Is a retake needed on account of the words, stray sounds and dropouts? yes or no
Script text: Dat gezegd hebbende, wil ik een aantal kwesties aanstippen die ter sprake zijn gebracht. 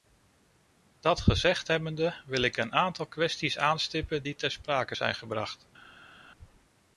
no